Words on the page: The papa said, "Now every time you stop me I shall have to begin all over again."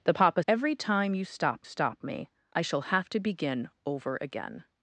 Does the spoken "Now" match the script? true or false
false